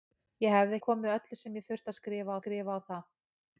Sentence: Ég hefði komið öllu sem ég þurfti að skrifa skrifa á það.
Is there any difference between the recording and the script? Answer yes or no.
no